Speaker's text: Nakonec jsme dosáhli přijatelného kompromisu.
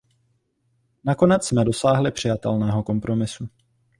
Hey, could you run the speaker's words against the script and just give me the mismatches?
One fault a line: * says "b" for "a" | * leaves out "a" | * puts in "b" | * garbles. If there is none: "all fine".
all fine